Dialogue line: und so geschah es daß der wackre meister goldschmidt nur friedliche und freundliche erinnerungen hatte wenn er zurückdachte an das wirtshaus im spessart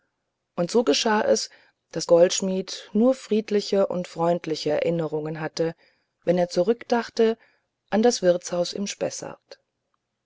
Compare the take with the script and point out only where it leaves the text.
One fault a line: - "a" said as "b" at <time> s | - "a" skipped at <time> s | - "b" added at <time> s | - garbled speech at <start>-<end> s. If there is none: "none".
- "der wackre meister" skipped at 2.1 s